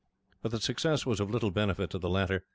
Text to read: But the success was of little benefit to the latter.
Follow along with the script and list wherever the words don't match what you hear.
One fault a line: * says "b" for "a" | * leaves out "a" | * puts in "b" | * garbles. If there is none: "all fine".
all fine